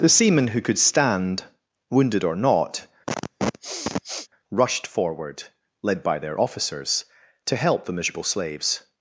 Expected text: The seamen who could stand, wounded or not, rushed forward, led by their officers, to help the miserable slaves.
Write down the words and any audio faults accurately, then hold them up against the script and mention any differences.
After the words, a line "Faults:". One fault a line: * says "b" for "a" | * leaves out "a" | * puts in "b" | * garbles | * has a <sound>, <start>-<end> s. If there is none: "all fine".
The seamen who could stand, wounded or not, rushed forward, led by their officers, to help the miserable slaves.
Faults:
* has a sniff, 3.1-4.3 s